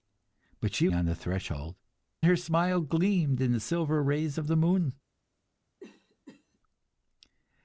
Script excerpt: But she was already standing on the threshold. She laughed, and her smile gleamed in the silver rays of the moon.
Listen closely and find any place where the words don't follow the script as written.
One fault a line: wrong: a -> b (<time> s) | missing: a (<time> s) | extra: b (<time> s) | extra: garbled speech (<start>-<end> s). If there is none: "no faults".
missing: was already standing (0.9 s)
missing: She laughed and (1.8 s)